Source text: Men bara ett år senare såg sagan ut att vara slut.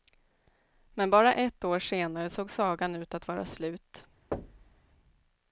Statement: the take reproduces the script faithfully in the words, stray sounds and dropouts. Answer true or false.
false